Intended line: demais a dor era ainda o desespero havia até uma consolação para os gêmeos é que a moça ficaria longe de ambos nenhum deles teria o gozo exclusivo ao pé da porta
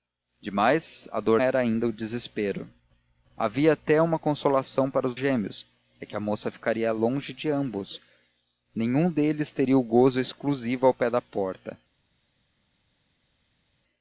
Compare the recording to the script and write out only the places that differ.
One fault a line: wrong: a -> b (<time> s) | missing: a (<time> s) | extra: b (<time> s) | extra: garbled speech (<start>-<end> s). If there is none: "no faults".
no faults